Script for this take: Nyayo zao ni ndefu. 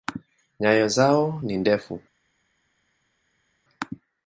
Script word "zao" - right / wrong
right